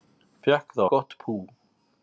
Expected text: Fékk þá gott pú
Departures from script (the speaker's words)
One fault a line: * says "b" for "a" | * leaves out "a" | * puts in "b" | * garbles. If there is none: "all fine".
all fine